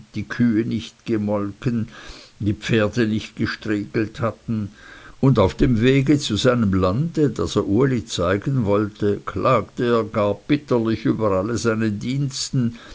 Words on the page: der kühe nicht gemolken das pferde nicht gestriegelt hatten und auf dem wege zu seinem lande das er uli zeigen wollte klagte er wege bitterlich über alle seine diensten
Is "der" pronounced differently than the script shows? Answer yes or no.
yes